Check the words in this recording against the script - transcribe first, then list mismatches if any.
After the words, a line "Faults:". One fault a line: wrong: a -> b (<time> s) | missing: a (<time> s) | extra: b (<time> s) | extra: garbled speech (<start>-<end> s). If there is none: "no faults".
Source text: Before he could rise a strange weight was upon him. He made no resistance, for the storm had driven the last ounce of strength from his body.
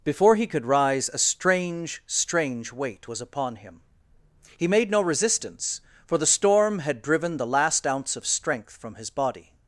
Before he could rise a strange strange weight was upon him. He made no resistance, for the storm had driven the last ounce of strength from his body.
Faults:
extra: strange (2.1 s)